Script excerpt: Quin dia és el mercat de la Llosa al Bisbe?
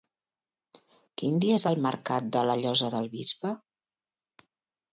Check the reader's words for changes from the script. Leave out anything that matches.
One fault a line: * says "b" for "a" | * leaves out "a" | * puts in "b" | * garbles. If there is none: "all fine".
* says "del" for "al"